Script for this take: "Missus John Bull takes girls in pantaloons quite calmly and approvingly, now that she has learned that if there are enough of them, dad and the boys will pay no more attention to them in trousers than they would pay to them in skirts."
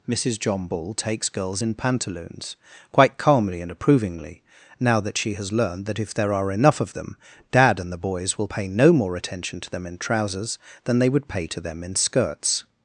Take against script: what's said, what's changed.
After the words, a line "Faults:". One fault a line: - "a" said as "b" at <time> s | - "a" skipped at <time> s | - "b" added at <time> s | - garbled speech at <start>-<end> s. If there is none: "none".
"Missus John Bull takes girls in pantaloons quite calmly and approvingly, now that she has learned that if there are enough of them, dad and the boys will pay no more attention to them in trousers than they would pay to them in skirts."
Faults:
none